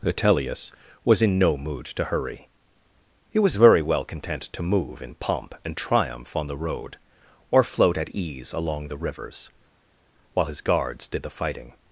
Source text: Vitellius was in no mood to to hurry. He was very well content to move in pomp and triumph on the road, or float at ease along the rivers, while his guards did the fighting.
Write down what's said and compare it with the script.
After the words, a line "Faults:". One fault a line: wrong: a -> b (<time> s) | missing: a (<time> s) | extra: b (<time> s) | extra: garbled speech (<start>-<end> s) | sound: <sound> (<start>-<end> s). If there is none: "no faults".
Vitellius was in no mood to hurry. He was very well content to move in pomp and triumph on the road, or float at ease along the rivers, while his guards did the fighting.
Faults:
missing: to (2.0 s)